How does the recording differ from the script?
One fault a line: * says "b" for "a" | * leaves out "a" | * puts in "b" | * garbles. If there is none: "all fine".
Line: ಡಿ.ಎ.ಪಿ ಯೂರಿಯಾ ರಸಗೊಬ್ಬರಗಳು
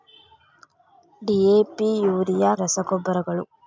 all fine